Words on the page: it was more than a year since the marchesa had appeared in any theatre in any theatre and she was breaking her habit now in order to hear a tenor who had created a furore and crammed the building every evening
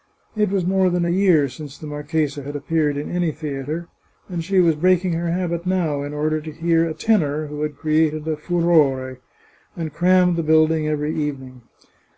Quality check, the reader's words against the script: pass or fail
fail